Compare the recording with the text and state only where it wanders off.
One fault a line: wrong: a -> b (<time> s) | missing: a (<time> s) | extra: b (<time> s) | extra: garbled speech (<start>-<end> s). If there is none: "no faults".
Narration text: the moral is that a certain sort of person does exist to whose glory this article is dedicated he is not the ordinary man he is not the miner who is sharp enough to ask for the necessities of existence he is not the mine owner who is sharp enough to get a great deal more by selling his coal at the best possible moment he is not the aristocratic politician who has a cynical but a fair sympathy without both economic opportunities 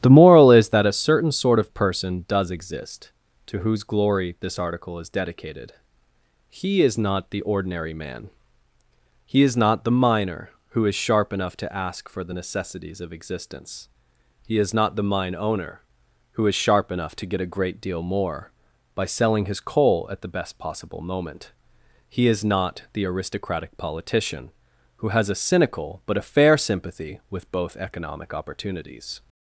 wrong: without -> with (27.3 s)